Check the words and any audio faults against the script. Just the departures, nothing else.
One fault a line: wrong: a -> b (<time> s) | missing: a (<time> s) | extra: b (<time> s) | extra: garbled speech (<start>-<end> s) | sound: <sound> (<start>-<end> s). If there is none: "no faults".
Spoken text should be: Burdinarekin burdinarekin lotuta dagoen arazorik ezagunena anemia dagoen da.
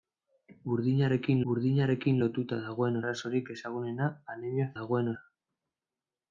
no faults